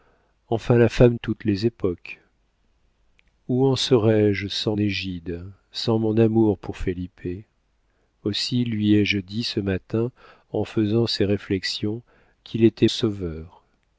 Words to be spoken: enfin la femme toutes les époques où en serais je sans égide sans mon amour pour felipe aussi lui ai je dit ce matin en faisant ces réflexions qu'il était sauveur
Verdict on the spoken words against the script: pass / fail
pass